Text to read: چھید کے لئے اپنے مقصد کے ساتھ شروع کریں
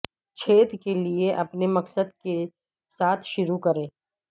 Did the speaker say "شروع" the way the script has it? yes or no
yes